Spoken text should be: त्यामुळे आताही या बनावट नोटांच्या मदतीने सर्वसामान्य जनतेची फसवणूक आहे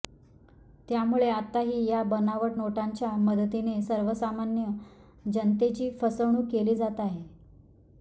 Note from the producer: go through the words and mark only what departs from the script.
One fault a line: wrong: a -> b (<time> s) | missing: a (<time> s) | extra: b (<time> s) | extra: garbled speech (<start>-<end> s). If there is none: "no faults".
extra: केली जात (6.5 s)